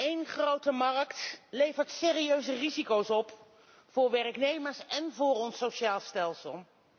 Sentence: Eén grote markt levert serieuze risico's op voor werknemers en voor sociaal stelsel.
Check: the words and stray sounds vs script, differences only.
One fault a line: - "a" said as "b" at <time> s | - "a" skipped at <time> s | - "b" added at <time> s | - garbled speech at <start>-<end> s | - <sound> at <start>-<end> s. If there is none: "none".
- "ons" added at 5.3 s